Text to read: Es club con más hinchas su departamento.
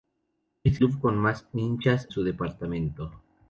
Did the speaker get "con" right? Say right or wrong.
right